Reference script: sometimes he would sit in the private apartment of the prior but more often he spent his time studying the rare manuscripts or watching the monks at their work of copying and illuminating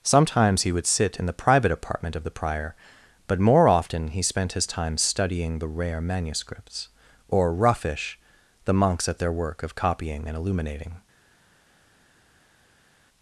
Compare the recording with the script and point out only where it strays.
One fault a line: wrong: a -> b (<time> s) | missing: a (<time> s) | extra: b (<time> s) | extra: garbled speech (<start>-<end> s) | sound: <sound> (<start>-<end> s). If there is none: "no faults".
wrong: watching -> roughish (7.5 s)